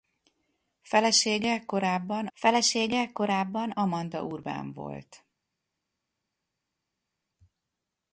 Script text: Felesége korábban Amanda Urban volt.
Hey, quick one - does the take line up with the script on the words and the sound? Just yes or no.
no